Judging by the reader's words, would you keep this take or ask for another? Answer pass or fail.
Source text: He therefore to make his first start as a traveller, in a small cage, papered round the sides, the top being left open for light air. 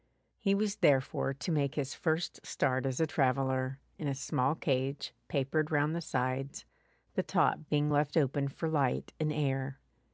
fail